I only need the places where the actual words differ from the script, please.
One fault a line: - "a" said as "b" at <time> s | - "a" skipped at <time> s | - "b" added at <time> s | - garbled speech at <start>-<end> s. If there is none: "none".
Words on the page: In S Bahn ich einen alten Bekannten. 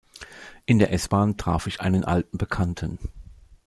- "der" added at 0.8 s
- "traf" added at 1.4 s